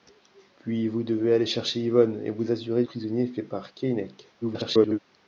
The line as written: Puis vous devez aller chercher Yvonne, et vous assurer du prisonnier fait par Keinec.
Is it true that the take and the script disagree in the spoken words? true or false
true